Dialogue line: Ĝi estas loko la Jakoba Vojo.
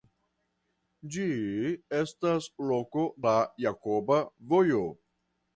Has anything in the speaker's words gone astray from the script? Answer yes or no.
no